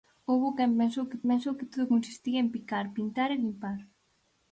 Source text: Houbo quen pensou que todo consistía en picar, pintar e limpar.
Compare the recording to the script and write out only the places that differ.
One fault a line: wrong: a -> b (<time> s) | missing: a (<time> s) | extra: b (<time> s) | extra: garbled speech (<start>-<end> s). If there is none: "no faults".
extra: pensou que (1.3 s)